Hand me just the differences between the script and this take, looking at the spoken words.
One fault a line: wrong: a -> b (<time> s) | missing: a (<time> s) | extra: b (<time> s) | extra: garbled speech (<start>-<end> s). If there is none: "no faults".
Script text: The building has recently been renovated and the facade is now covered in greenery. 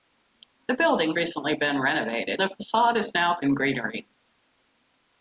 missing: has (1.1 s)
missing: and (2.4 s)
missing: covered (3.4 s)